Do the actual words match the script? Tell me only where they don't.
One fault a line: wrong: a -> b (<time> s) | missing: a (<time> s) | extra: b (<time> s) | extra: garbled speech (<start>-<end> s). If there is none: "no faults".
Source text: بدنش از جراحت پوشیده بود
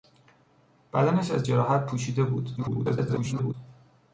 extra: garbled speech (2.6-3.5 s)